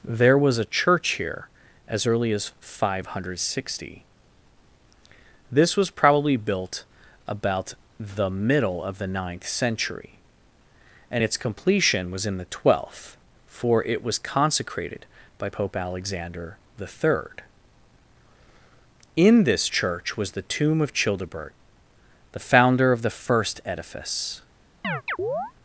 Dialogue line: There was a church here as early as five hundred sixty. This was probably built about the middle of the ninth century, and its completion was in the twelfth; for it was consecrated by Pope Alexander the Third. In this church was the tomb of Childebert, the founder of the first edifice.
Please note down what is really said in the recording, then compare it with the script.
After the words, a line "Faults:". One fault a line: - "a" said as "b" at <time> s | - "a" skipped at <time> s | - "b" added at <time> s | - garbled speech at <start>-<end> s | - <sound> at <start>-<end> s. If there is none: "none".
There was a church here as early as five hundred sixty. This was probably built about the middle of the ninth century, and its completion was in the twelfth; for it was consecrated by Pope Alexander the Third. In this church was the tomb of Childebert, the founder of the first edifice.
Faults:
- chirp at 24.8-25.5 s